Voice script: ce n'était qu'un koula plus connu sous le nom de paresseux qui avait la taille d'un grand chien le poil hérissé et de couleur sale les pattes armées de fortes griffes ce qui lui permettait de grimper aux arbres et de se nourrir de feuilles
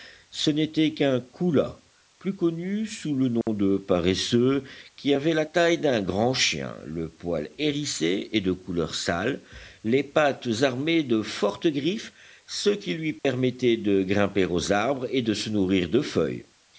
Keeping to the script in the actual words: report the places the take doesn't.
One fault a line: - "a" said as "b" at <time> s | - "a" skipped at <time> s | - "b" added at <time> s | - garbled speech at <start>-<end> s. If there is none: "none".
none